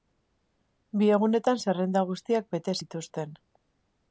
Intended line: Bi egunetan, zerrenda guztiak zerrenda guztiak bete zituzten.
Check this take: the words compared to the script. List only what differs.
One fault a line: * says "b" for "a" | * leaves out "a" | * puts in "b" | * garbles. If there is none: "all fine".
* leaves out "zerrenda guztiak"